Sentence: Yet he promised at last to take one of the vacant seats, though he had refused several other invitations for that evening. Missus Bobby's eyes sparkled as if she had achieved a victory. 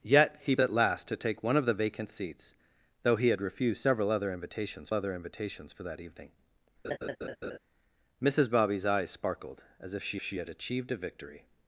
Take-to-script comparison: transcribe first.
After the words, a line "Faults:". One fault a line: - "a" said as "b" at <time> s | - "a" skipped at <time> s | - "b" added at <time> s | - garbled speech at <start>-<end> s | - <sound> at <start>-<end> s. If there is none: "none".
Yet he at last to take one of the vacant seats, though he had refused several other invitations other invitations for that evening. Missus Bobby's eyes sparkled as if she she had achieved a victory.
Faults:
- "promised" skipped at 0.6 s
- "other invitations" added at 4.9 s
- laugh at 6.8-7.6 s
- "she" added at 10.2 s